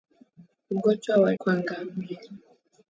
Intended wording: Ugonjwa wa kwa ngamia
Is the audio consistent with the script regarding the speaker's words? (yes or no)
yes